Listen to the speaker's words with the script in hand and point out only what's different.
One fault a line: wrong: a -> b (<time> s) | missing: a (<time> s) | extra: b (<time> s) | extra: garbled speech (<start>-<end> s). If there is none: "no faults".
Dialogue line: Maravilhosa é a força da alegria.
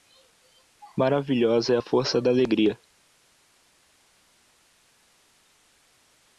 no faults